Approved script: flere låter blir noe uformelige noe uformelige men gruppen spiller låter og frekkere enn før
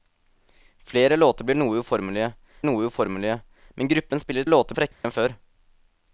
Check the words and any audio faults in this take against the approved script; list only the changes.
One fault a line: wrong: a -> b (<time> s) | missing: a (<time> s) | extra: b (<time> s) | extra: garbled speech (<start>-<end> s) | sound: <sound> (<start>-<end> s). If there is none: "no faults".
sound: dropout (4.9-5.0 s)